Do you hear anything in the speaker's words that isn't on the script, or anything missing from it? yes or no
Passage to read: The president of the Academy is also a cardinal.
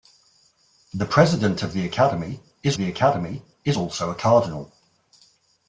yes